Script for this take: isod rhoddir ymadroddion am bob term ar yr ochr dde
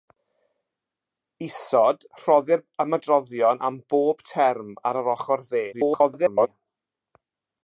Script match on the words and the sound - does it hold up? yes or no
no